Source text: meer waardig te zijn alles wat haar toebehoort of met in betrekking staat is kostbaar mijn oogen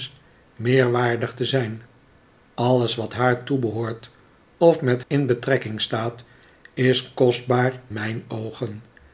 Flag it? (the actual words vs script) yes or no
no